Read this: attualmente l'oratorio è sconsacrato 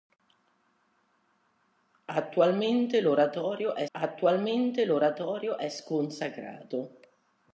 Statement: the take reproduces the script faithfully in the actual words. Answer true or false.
false